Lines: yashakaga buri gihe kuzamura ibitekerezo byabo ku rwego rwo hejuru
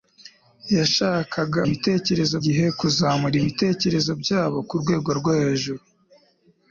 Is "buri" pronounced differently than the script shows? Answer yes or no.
yes